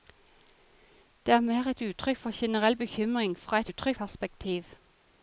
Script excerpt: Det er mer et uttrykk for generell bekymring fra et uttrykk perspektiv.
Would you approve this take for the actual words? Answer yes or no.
yes